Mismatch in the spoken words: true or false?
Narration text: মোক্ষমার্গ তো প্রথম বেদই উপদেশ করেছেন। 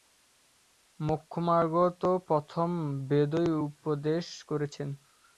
false